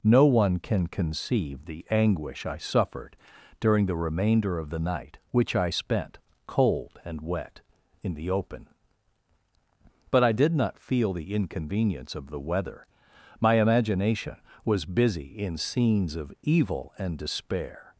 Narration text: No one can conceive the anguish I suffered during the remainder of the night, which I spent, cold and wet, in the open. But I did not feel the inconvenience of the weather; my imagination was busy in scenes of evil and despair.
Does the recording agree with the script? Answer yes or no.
yes